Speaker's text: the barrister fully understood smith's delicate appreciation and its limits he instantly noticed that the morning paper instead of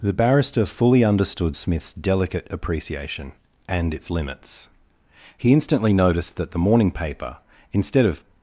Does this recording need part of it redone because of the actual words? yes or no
no